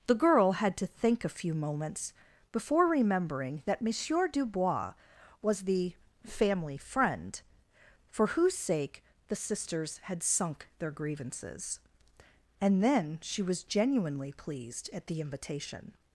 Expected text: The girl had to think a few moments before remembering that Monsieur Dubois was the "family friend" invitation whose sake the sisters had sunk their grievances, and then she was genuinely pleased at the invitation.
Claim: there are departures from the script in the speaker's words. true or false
true